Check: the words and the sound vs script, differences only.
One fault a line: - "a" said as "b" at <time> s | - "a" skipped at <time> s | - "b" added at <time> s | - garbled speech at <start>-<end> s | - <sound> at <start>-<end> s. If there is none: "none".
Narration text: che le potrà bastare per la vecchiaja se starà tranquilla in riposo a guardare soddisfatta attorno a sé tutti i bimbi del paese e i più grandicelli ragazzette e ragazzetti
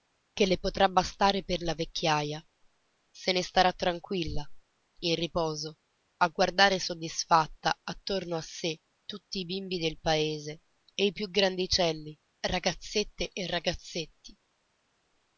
- "ne" added at 3.3 s